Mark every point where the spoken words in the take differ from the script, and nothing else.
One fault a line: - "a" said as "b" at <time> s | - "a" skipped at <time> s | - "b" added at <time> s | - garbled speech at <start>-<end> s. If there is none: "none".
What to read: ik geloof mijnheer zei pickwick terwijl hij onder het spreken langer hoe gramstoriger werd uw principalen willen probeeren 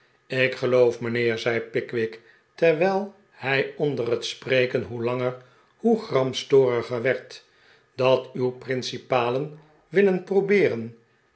- "hoe" added at 4.8 s
- "dat" added at 8.0 s